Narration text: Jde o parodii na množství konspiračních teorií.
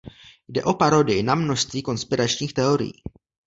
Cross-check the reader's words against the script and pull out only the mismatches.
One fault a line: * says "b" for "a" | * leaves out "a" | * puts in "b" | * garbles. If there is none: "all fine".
all fine